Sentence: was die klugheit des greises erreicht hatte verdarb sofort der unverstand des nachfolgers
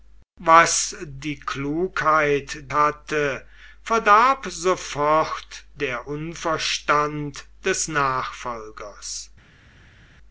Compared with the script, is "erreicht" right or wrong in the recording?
wrong